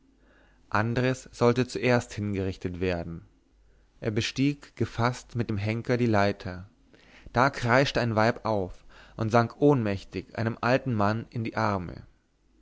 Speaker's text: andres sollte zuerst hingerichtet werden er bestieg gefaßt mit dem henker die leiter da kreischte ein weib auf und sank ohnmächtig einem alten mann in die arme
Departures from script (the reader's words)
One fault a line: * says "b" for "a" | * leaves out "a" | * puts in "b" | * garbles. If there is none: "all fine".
all fine